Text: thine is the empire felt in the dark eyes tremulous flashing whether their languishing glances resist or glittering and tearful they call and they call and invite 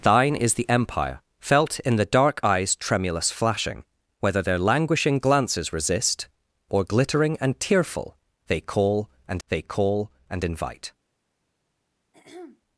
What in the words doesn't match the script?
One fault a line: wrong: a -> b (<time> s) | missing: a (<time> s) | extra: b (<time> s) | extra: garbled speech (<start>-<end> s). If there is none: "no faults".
no faults